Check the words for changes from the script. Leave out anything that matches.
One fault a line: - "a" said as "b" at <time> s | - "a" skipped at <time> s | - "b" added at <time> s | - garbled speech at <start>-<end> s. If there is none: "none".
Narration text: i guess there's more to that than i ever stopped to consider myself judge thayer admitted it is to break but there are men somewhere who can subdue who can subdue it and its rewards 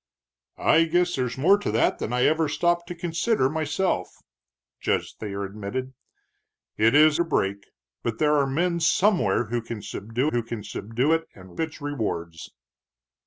none